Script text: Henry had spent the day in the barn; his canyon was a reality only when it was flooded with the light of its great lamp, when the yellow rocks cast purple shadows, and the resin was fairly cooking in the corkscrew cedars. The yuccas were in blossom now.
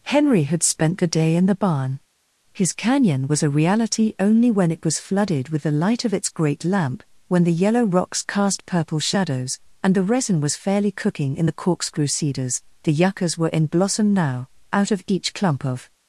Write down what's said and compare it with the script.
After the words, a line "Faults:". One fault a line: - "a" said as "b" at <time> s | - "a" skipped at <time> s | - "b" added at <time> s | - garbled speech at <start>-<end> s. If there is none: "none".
Henry had spent the day in the barn; his canyon was a reality only when it was flooded with the light of its great lamp, when the yellow rocks cast purple shadows, and the resin was fairly cooking in the corkscrew cedars. The yuccas were in blossom now. Out of each clump of
Faults:
- "Out of each clump of" added at 14.7 s